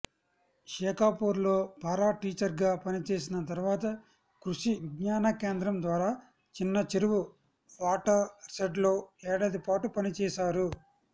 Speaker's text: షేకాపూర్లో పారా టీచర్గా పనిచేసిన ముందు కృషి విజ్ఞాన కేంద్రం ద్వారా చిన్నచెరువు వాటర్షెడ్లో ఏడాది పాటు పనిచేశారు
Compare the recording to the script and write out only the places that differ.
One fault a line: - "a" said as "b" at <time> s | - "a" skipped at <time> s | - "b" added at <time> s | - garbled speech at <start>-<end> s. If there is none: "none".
- "ముందు" said as "తర్వాత" at 3.5 s